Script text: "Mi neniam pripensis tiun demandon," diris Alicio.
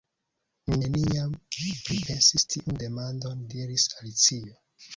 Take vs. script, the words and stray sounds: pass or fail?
pass